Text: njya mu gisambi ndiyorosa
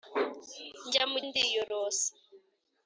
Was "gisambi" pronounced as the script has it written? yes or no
no